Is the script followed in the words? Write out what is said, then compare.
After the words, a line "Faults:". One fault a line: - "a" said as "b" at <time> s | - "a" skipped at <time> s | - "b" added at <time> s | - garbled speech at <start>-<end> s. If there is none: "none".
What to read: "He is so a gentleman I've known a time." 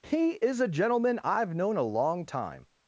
"He is a gentleman I've known a long time."
Faults:
- "so" skipped at 0.6 s
- "long" added at 1.8 s